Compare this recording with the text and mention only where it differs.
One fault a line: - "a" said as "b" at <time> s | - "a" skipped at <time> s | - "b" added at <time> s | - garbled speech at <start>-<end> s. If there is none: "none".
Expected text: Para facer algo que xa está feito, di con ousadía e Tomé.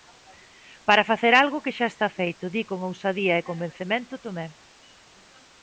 - "convencemento" added at 3.5 s